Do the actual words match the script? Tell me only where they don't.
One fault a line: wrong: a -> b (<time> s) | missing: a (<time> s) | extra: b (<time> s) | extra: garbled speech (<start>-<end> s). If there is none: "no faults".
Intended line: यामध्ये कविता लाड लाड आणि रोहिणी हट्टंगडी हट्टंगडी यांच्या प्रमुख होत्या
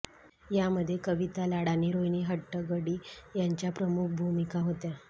missing: लाड (1.7 s)
missing: हट्टंगडी (3.0 s)
extra: भूमिका (4.2 s)